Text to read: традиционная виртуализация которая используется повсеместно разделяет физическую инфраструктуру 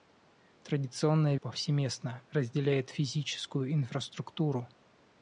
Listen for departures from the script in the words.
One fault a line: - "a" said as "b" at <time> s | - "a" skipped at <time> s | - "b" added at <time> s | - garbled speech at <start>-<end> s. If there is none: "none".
- "виртуализация которая используется" skipped at 1.4 s